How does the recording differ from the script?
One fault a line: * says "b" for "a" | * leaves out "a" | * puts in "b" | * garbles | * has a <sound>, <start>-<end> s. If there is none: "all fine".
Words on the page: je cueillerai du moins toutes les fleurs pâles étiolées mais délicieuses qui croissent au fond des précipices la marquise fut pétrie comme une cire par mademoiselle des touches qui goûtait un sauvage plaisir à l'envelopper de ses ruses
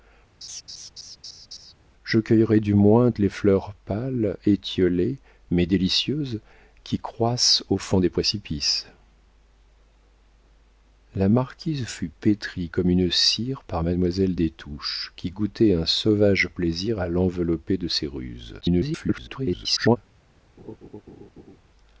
* has a laugh, 0.4-1.7 s
* leaves out "toutes"
* garbles
* has a laugh, 20.6-21.6 s